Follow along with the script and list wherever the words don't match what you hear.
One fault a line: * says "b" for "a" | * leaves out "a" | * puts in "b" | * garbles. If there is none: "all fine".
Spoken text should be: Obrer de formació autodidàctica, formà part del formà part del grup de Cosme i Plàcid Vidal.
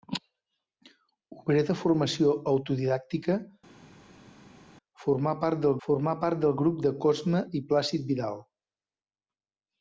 all fine